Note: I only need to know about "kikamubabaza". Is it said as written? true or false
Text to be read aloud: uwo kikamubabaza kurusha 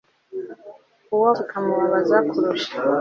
true